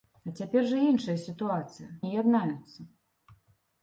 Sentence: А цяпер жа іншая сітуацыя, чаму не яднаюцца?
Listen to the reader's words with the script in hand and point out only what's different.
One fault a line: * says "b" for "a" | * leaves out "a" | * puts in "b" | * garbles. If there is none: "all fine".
* leaves out "чаму"